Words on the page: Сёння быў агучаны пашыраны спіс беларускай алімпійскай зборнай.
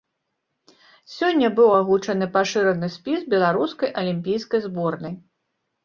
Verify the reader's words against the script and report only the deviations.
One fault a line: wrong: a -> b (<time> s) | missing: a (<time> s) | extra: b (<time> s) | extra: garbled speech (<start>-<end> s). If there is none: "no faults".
no faults